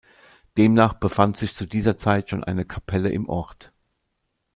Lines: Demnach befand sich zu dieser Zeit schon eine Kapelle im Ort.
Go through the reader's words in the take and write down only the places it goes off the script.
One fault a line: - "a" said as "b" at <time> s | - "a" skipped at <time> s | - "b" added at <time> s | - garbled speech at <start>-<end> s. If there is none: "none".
none